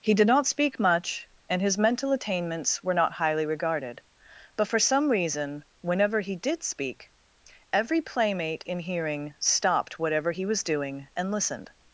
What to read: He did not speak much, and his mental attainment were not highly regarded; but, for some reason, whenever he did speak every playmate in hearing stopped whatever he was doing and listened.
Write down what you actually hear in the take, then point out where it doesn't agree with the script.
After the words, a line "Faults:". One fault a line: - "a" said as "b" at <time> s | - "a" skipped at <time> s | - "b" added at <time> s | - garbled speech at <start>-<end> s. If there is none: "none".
He did not speak much, and his mental attainments were not highly regarded; but, for some reason, whenever he did speak every playmate in hearing stopped whatever he was doing and listened.
Faults:
- "attainment" said as "attainments" at 2.1 s